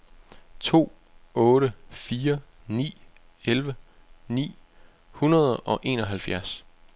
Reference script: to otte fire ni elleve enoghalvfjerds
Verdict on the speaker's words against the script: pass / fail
fail